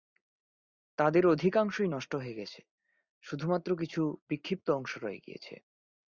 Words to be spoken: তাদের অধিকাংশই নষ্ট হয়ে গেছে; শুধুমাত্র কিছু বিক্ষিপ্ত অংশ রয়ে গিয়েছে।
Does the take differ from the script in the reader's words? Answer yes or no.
no